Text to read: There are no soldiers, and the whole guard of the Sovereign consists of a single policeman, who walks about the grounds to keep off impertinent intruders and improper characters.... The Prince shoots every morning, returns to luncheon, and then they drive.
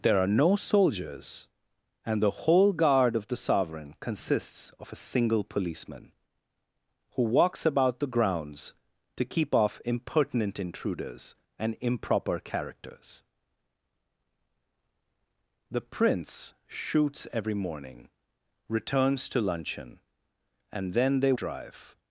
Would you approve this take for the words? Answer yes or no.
yes